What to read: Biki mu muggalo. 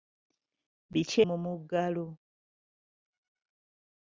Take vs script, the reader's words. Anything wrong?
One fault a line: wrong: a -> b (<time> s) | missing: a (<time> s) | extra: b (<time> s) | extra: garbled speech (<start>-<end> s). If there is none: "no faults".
no faults